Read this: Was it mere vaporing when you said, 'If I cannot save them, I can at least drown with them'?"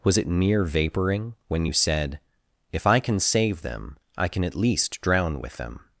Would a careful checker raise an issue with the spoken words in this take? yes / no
yes